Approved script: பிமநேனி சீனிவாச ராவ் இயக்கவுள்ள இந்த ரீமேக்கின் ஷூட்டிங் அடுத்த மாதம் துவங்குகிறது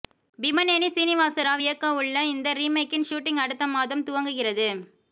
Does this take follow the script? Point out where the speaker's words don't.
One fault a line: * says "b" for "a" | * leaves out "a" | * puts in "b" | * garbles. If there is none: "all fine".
all fine